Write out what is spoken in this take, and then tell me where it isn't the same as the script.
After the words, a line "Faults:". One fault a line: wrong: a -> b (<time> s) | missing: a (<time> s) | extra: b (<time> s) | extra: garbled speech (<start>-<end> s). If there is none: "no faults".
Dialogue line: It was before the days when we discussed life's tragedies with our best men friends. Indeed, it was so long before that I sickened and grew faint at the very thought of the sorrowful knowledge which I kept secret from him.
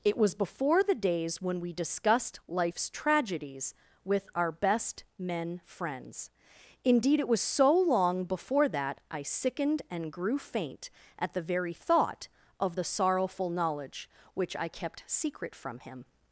It was before the days when we discussed life's tragedies with our best men friends. Indeed, it was so long before that I sickened and grew faint at the very thought of the sorrowful knowledge which I kept secret from him.
Faults:
no faults